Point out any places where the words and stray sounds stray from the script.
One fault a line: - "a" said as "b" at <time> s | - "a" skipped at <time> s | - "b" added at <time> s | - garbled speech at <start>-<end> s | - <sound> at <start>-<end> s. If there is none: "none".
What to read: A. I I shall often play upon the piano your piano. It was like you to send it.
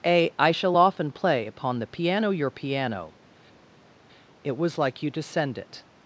- "I" skipped at 0.5 s